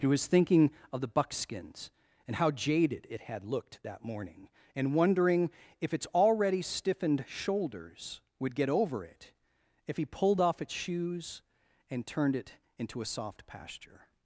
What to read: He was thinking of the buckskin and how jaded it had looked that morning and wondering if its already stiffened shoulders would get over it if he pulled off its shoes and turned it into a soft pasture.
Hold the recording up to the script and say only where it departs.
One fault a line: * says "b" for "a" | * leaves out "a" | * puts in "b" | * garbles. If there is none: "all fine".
* says "buckskins" for "buckskin"